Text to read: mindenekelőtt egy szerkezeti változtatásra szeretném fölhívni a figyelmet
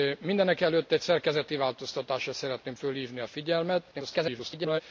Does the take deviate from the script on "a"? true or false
false